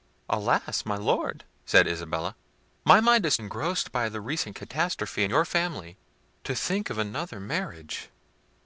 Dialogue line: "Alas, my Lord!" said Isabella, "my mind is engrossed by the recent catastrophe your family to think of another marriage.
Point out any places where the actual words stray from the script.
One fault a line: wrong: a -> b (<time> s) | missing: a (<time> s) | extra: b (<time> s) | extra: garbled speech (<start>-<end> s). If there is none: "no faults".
no faults